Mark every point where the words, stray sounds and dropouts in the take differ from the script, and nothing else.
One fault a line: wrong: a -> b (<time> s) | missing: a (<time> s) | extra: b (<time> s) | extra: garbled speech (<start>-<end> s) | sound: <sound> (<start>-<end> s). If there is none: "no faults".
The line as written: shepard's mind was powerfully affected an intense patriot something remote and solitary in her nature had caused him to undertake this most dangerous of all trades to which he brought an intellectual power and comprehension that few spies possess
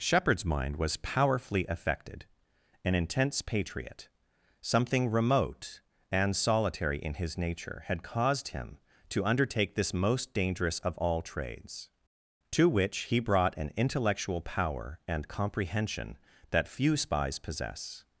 wrong: her -> his (7.1 s)